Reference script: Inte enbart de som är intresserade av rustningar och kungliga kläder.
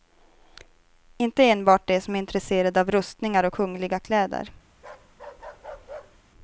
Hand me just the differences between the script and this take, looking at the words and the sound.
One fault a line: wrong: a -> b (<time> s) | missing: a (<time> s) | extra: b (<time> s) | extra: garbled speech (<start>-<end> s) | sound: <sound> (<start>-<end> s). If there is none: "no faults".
sound: bark (4.7-6.2 s)